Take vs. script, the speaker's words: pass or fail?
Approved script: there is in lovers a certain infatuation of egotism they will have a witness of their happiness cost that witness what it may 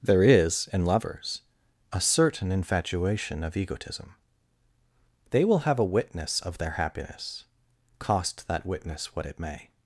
pass